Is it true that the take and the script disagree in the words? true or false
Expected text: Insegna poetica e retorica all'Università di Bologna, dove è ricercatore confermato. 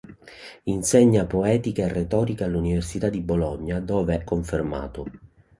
true